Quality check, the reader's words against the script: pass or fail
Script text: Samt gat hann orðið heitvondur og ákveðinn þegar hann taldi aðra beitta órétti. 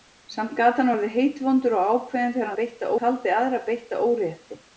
fail